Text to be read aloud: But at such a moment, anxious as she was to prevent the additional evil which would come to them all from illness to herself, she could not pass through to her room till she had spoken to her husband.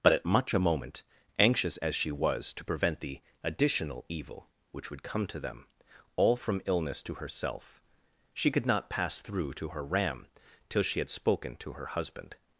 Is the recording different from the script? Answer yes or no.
yes